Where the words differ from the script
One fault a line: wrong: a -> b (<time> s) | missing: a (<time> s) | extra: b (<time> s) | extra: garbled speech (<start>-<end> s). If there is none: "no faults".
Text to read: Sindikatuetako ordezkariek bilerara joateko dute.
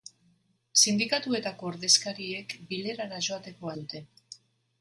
no faults